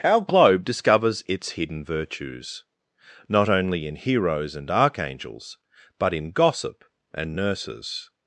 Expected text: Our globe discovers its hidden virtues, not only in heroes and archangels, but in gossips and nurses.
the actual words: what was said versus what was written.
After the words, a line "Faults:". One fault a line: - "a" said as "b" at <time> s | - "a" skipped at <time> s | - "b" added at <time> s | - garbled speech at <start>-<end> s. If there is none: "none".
Our globe discovers its hidden virtues, not only in heroes and archangels, but in gossip and nurses.
Faults:
- "gossips" said as "gossip" at 6.3 s